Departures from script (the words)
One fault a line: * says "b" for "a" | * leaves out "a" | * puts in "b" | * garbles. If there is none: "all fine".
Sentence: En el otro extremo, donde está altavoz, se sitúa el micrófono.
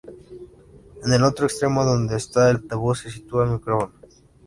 all fine